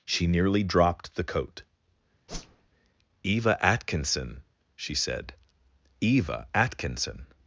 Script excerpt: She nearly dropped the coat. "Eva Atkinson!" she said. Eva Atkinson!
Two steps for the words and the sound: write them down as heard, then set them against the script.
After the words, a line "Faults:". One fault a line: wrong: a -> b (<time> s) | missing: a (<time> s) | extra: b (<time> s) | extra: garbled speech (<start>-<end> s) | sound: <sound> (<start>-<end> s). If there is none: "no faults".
She nearly dropped the coat. "Eva Atkinson!" she said. Eva Atkinson!
Faults:
sound: whoosh (2.3-2.7 s)